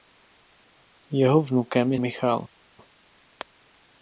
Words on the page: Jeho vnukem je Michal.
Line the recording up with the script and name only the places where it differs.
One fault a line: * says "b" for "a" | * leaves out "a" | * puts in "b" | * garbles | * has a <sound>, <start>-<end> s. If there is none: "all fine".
all fine